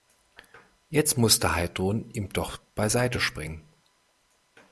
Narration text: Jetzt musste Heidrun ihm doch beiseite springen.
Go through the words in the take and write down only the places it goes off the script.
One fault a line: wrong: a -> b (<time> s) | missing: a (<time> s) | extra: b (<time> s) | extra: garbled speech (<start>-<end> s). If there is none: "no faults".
no faults